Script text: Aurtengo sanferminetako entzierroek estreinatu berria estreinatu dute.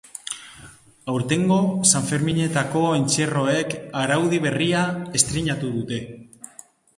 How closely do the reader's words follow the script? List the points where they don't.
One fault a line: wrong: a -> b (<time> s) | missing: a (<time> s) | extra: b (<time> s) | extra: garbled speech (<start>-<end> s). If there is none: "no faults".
wrong: estreinatu -> araudi (4.0 s)